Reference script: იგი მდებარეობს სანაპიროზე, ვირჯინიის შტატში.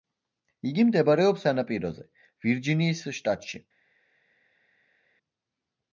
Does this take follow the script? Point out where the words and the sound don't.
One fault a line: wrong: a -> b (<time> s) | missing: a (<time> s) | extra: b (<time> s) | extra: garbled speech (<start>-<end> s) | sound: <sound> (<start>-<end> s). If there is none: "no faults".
no faults